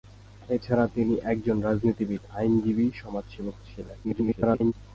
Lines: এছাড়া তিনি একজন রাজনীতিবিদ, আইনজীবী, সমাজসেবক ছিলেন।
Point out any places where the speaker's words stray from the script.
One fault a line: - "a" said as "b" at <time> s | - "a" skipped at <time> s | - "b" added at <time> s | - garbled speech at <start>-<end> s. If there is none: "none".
- garbled speech at 4.0-4.7 s